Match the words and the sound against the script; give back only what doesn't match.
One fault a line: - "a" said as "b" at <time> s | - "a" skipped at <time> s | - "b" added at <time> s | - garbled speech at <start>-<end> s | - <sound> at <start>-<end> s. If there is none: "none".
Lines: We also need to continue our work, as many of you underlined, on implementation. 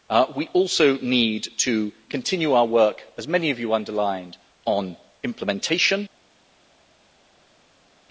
none